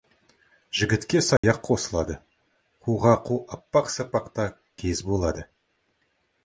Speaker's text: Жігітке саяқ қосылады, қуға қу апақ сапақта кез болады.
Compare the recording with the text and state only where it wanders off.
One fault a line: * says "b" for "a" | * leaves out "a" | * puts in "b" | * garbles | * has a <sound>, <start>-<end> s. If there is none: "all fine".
* has a dropout, 1.4-1.4 s